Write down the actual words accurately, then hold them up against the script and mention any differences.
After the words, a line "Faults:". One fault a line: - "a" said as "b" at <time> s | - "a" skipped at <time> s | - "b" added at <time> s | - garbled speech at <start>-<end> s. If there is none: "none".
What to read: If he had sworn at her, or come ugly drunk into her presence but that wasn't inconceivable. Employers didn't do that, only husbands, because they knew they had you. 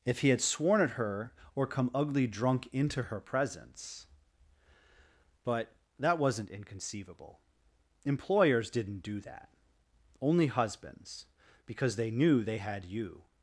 If he had sworn at her, or come ugly drunk into her presence but that wasn't inconceivable. Employers didn't do that, only husbands, because they knew they had you.
Faults:
none